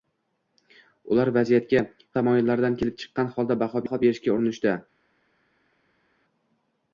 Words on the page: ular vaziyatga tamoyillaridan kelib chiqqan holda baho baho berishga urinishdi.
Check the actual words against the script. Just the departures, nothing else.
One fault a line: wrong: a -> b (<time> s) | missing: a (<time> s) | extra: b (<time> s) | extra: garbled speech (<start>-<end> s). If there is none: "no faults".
no faults